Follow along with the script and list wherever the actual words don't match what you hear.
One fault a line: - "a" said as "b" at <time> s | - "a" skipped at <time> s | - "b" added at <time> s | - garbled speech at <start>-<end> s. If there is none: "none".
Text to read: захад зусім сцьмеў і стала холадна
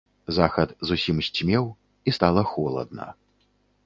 none